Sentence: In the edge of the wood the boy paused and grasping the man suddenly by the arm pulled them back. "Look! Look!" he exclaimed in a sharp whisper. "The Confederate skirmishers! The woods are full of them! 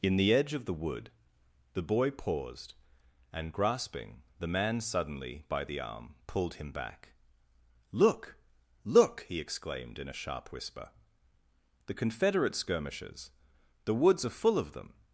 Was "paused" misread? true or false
false